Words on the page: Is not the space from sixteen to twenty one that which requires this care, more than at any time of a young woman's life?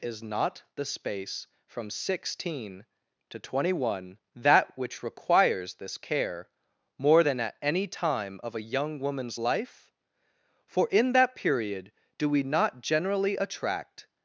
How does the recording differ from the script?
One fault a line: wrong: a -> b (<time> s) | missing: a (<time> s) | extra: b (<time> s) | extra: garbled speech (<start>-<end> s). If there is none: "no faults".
extra: For in that period do we not generally attract (10.7 s)